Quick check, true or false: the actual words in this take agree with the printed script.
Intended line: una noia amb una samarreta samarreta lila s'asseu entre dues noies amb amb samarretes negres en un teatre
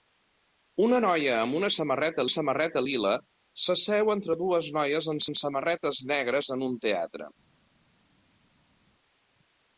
true